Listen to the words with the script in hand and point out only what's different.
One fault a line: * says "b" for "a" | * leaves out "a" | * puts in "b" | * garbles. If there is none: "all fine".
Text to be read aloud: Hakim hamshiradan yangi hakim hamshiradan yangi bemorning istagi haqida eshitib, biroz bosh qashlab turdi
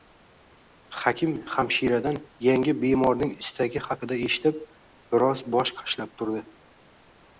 * leaves out "hakim hamshiradan yangi"